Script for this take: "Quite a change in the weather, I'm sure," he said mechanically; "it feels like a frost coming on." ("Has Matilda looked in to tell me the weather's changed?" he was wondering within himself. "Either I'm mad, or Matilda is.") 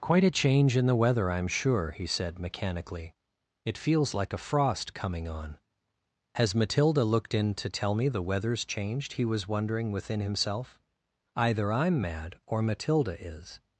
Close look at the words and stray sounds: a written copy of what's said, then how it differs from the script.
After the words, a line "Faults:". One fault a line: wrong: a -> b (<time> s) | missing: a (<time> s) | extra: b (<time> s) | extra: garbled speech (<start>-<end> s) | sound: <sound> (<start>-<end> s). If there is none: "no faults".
"Quite a change in the weather, I'm sure," he said mechanically; "it feels like a frost coming on." ("Has Matilda looked in to tell me the weather's changed?" he was wondering within himself. "Either I'm mad, or Matilda is.")
Faults:
no faults